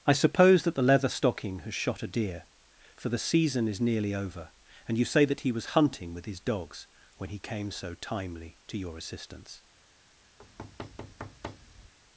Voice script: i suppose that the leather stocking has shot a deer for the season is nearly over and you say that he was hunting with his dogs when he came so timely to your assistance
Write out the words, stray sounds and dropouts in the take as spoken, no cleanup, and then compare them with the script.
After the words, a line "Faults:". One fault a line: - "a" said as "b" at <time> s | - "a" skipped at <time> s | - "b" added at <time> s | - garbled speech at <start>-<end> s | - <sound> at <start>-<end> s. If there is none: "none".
i suppose that the leather stocking has shot a deer for the season is nearly over and you say that he was hunting with his dogs when he came so timely to your assistance
Faults:
- thud at 10.4-11.9 s